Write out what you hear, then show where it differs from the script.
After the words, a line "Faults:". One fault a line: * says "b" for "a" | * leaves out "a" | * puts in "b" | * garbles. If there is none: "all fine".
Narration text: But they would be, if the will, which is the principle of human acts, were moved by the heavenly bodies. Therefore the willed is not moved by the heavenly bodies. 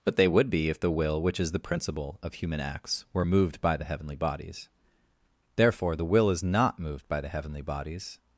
But they would be, if the will, which is the principle of human acts, were moved by the heavenly bodies. Therefore the will is not moved by the heavenly bodies.
Faults:
* says "will" for "willed"